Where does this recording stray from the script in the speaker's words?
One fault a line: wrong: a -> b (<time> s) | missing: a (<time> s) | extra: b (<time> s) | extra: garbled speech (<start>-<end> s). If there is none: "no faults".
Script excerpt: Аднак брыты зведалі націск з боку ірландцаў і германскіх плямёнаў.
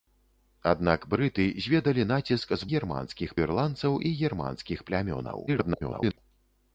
wrong: боку -> германскіх (2.7 s)
extra: garbled speech (5.5-6.2 s)